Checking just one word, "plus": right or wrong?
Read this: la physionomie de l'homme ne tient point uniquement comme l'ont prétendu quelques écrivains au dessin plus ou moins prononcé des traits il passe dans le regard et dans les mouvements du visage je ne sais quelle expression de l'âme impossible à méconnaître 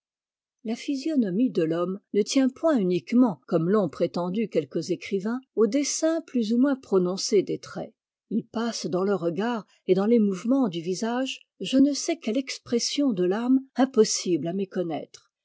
right